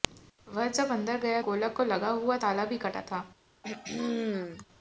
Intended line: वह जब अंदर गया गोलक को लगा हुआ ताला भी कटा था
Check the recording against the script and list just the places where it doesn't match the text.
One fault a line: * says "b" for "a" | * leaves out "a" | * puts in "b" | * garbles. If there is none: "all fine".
all fine